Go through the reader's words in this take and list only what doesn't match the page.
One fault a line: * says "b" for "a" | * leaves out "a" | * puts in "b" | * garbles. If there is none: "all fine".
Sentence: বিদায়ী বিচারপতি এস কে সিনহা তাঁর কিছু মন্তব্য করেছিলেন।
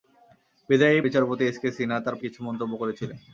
all fine